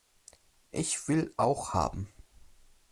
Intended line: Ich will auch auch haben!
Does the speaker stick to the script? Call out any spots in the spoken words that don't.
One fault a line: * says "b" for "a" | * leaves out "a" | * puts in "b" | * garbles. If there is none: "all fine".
* leaves out "auch"